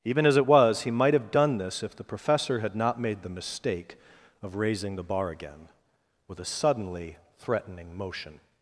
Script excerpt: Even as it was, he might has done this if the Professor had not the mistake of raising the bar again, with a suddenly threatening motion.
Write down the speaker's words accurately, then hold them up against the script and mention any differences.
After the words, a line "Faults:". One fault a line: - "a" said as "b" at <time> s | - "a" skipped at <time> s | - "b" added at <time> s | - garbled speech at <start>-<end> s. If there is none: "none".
Even as it was, he might have done this if the Professor had not made the mistake of raising the bar again, with a suddenly threatening motion.
Faults:
- "has" said as "have" at 1.1 s
- "made" added at 3.0 s